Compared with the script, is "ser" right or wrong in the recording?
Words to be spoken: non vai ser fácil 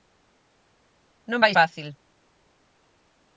wrong